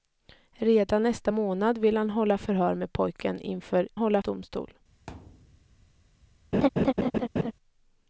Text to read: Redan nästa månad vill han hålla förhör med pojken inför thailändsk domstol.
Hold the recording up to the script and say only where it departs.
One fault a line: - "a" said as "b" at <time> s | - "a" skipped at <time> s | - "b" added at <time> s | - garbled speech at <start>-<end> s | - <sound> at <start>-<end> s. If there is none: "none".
- "thailändsk" said as "hålla" at 3.9 s
- thud at 5.1-5.9 s
- laugh at 6.5-7.5 s